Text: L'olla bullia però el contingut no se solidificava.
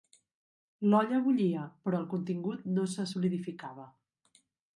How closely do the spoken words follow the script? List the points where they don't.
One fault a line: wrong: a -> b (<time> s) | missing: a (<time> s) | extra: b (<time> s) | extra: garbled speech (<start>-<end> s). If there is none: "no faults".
no faults